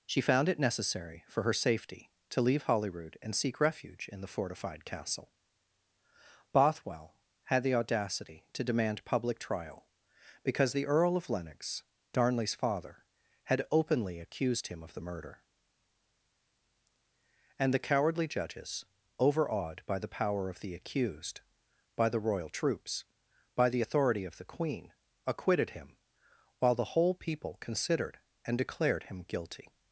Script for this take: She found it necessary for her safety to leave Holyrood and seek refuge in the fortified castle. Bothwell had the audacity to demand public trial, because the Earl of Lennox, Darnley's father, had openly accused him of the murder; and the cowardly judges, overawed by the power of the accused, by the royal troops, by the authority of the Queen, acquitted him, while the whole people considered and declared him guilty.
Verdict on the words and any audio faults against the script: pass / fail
pass